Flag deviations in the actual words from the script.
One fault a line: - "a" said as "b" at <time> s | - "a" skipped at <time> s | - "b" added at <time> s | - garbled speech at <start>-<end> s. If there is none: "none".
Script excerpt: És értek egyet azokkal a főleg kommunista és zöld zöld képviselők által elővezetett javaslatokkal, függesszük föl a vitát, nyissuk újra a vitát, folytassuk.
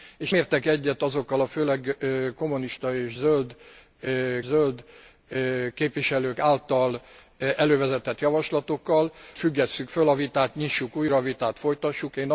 none